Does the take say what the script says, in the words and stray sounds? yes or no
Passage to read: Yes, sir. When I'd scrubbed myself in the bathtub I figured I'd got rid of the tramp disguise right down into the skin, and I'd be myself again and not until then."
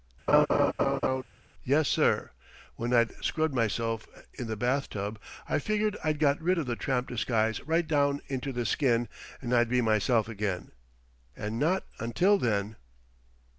no